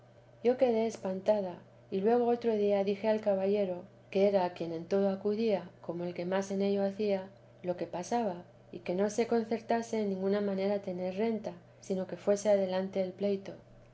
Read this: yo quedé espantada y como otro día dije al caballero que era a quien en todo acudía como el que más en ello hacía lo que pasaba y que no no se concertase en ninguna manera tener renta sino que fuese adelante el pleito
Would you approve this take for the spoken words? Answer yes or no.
no